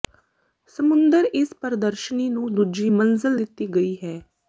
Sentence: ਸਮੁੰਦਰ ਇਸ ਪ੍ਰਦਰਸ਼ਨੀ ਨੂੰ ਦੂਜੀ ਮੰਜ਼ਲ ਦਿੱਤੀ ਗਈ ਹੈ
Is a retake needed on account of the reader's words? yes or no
no